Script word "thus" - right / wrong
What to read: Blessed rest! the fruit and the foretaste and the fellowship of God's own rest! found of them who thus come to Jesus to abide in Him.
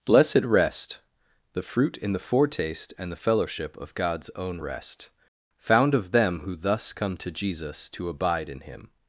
right